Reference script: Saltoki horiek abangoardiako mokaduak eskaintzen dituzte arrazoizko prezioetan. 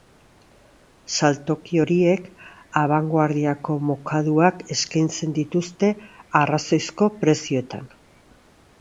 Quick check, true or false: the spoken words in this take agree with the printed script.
true